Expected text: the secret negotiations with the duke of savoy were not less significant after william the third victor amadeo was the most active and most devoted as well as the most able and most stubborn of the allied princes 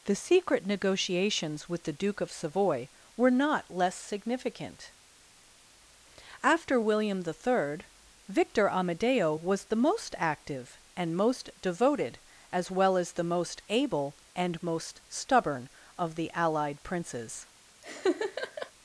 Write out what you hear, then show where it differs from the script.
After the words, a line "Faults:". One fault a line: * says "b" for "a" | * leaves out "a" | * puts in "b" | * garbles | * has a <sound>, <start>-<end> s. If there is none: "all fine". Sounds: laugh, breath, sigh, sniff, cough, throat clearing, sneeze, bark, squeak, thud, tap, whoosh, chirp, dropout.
the secret negotiations with the duke of savoy were not less significant after william the third victor amadeo was the most active and most devoted as well as the most able and most stubborn of the allied princes
Faults:
* has a laugh, 17.8-18.7 s